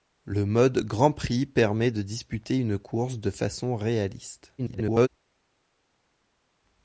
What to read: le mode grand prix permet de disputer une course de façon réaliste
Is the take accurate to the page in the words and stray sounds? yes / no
no